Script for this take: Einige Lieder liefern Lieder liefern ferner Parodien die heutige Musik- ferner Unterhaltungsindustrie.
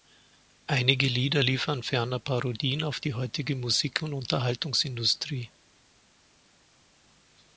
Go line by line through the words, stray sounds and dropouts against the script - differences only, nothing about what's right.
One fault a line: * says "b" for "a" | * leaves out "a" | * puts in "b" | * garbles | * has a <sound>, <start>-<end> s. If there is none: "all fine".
* leaves out "Lieder liefern"
* puts in "auf"
* says "und" for "ferner"